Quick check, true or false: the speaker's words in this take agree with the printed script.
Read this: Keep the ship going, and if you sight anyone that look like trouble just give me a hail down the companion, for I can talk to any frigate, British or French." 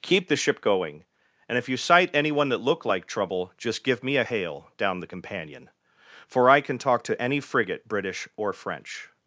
true